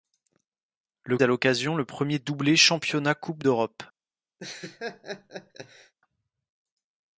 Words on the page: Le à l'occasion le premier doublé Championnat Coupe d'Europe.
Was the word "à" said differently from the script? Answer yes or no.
no